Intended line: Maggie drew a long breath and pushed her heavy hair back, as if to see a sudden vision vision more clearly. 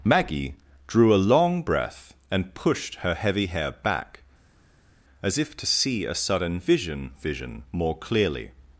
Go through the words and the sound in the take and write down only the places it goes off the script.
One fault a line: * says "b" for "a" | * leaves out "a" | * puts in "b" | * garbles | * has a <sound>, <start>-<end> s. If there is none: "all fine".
all fine